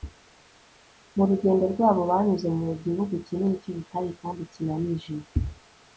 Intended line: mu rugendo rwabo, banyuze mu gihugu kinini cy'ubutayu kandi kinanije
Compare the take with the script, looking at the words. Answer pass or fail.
pass